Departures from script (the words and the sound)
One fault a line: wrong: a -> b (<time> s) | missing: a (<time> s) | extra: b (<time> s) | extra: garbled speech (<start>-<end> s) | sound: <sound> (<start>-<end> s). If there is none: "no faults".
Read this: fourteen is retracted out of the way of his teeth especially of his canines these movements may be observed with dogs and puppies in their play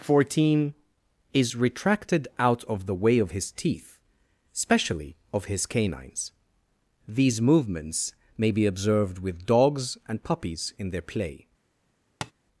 sound: tap (12.2-12.3 s)